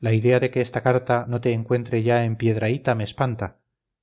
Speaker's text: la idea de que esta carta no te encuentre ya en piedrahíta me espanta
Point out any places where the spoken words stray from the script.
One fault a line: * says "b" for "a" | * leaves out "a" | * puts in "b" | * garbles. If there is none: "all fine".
all fine